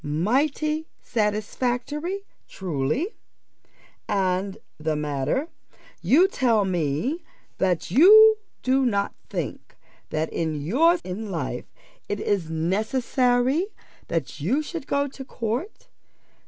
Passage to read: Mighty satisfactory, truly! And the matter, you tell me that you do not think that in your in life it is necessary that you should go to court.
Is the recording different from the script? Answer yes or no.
no